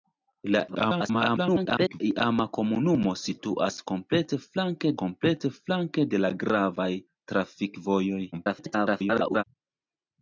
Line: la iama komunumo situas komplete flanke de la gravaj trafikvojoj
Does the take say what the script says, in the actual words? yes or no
no